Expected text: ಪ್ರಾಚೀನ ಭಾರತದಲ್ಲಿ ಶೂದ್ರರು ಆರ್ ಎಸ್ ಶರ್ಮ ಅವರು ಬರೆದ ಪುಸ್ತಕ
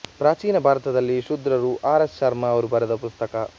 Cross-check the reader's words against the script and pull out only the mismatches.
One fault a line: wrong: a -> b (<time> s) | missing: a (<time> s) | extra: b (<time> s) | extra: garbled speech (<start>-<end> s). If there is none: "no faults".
no faults